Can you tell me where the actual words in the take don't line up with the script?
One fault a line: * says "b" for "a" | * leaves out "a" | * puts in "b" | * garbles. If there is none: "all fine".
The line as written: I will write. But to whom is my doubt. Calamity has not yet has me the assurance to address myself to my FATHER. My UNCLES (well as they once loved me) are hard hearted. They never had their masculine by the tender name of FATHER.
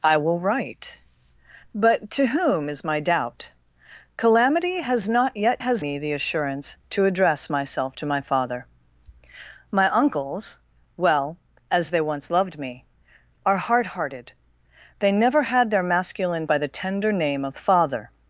all fine